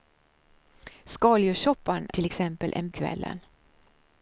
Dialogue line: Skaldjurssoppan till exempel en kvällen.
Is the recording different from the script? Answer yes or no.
no